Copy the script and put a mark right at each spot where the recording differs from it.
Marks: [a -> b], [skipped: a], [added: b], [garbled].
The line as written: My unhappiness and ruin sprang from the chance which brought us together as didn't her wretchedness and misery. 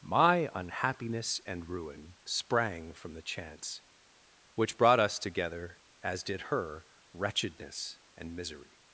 My unhappiness and ruin sprang from the chance which brought us together as [didn't -> did] her wretchedness and misery.